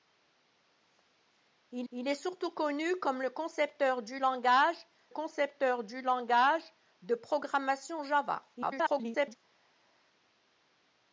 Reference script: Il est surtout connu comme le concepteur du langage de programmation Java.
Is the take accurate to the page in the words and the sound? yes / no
no